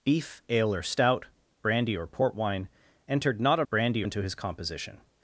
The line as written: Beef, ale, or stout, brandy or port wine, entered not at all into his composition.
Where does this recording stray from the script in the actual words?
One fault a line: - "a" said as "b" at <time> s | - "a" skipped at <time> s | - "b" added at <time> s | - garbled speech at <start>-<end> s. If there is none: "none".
- "all" said as "brandy" at 3.7 s